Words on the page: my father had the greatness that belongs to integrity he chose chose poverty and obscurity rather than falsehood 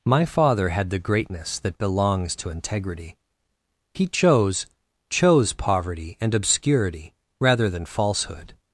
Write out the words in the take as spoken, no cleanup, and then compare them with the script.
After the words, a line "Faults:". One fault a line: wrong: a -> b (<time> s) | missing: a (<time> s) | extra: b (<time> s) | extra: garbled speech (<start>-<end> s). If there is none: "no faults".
my father had the greatness that belongs to integrity he chose chose poverty and obscurity rather than falsehood
Faults:
no faults